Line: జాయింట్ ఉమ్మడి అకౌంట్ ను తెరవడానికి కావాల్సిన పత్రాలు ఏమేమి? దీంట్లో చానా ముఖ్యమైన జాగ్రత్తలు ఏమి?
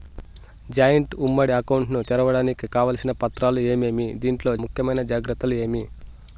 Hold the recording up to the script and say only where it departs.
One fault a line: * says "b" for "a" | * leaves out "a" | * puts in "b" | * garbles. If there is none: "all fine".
* leaves out "చానా"